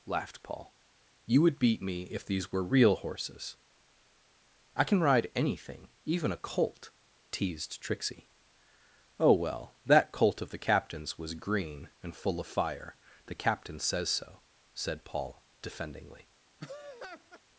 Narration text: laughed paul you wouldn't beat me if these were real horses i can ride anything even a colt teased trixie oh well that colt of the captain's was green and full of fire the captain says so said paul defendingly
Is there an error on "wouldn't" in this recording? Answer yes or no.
yes